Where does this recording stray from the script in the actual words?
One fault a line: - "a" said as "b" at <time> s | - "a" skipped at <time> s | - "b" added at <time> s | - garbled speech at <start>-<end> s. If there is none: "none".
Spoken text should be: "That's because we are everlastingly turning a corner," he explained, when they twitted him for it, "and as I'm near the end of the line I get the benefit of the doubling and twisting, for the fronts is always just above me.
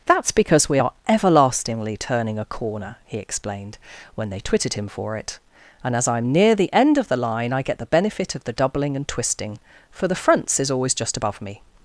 none